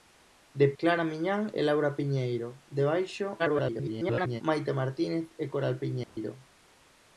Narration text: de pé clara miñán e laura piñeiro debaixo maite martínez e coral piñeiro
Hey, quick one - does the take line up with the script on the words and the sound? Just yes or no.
no